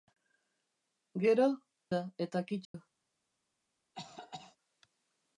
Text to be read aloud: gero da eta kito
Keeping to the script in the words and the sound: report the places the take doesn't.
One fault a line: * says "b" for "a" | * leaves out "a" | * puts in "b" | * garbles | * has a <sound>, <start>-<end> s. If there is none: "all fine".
* has a dropout, 2.6-2.7 s
* has a cough, 3.9-4.6 s